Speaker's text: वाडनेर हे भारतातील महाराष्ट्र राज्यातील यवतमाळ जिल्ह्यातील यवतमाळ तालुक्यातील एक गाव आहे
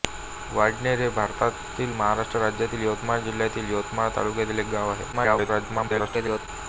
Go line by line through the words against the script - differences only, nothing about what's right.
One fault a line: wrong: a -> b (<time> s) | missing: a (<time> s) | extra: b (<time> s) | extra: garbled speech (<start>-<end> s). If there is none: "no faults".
extra: garbled speech (5.1-6.5 s)